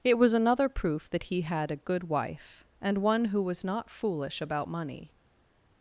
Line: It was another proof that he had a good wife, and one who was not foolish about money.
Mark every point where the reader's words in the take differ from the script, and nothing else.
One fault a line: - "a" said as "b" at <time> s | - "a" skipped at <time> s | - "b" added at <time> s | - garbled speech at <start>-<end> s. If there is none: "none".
none